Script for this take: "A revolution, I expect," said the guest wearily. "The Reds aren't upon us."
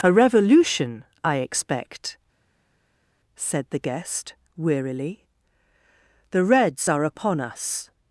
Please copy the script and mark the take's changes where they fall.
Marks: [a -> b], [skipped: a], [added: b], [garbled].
"A revolution, I expect," said the guest wearily. "The Reds [aren't -> are] upon us."